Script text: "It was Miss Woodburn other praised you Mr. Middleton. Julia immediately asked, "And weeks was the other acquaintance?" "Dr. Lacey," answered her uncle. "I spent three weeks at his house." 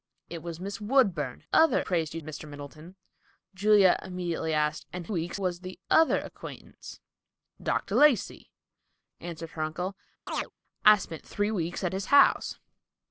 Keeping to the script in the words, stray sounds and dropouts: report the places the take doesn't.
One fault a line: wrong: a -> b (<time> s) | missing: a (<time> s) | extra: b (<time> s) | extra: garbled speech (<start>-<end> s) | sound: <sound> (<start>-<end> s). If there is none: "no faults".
sound: chirp (10.3-10.5 s)